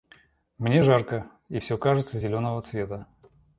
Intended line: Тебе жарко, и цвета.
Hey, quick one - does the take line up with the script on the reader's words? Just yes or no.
no